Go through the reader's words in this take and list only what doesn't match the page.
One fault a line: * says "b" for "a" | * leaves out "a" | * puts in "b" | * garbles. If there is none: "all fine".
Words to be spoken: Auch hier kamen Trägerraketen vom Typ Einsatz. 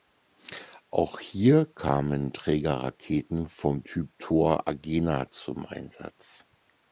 * puts in "Thor Agena zum"